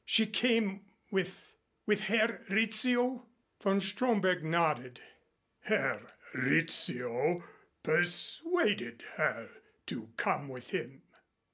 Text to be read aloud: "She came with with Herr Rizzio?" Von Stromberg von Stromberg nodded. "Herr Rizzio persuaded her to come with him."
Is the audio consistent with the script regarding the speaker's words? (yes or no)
no